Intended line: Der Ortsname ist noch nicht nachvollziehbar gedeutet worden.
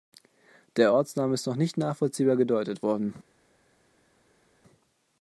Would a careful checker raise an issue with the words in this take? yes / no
no